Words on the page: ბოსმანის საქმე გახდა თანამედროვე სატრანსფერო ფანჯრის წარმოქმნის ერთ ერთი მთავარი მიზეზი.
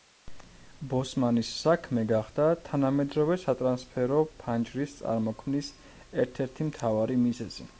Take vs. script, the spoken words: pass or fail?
pass